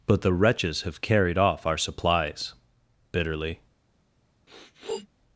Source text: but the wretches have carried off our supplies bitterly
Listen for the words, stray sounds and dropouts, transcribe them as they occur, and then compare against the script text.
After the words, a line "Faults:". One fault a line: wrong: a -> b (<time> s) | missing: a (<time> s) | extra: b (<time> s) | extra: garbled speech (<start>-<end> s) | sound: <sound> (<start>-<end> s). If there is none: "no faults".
but the wretches have carried off our supplies bitterly
Faults:
sound: sniff (4.5-5.1 s)